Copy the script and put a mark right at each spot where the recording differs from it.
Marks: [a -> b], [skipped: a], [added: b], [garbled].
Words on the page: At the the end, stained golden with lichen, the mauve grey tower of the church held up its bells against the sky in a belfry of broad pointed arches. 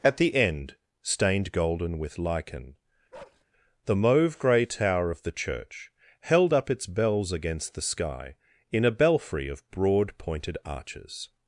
At the [skipped: the] end, stained golden with lichen, the mauve grey tower of the church held up its bells against the sky in a belfry of broad pointed arches.